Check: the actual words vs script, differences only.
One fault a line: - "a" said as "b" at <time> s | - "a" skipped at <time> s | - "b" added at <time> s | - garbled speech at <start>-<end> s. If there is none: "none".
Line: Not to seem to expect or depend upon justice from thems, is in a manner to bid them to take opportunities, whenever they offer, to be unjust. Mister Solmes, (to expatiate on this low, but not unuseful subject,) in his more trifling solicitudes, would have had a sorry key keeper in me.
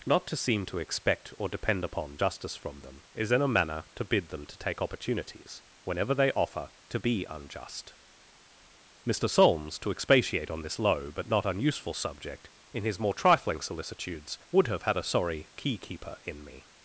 - "thems" said as "them" at 2.8 s